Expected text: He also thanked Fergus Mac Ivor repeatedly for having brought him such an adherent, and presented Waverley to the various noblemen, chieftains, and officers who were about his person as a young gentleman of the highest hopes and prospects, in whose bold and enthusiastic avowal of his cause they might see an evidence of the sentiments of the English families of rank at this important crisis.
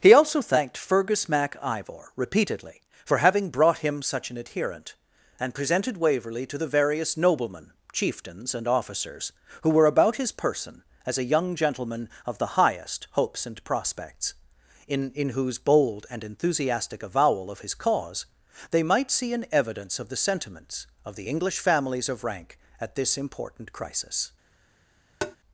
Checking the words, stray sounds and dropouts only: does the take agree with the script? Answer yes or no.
no